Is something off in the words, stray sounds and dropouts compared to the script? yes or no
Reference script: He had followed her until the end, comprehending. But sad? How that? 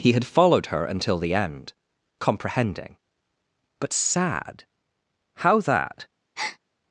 yes